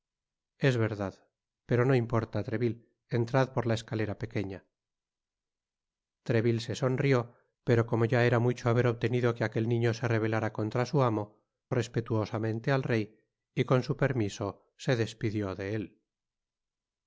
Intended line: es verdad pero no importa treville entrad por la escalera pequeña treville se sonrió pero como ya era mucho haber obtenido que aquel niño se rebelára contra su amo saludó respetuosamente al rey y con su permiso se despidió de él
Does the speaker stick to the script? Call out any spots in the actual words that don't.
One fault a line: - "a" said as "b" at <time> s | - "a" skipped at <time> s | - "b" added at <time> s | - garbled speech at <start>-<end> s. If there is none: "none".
- "saludó" skipped at 11.4 s